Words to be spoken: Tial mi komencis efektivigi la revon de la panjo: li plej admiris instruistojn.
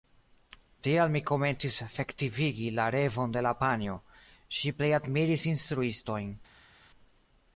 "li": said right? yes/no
no